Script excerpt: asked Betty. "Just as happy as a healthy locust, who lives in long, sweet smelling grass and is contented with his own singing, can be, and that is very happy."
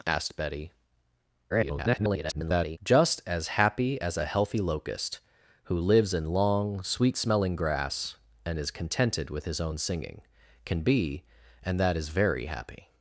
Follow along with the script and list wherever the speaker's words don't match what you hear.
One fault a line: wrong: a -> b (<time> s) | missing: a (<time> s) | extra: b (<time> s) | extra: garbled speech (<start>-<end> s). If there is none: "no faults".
extra: garbled speech (1.5-2.8 s)